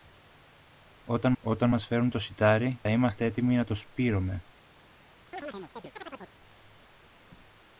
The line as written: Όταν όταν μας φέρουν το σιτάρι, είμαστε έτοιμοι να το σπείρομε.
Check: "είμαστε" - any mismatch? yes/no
no